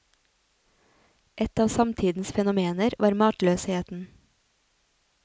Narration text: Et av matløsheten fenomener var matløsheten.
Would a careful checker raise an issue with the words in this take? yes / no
yes